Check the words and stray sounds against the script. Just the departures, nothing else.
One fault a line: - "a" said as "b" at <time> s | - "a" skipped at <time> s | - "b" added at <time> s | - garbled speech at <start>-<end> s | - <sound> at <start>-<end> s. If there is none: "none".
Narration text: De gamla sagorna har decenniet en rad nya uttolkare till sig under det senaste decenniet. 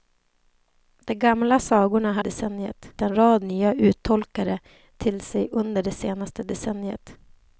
none